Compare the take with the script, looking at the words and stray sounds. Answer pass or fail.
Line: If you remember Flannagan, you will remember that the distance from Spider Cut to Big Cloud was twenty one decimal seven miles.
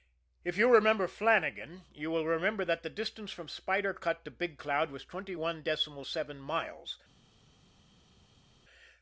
pass